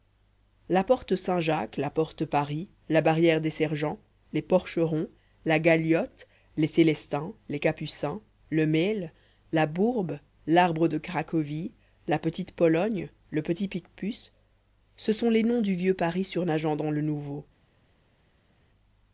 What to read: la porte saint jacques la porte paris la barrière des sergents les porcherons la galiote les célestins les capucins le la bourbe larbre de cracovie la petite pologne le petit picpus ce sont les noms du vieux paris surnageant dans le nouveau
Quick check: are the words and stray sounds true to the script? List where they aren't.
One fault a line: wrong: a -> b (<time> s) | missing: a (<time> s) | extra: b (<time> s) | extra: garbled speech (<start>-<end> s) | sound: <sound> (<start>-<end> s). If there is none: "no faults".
extra: mail (8.6 s)